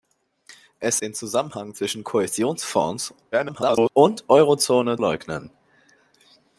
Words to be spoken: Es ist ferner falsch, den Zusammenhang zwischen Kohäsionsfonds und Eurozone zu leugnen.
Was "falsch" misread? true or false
true